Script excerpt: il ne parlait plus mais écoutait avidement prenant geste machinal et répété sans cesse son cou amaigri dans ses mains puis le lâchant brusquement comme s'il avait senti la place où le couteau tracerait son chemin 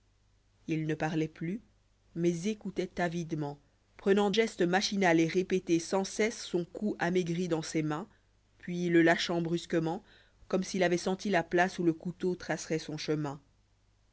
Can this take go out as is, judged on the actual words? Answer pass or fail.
pass